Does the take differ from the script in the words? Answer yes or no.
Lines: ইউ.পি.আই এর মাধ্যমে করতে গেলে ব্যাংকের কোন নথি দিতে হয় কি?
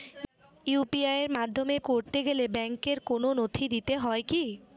no